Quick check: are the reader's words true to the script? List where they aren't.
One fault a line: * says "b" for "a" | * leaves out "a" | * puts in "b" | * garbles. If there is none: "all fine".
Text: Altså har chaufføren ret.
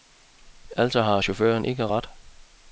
* puts in "ikke"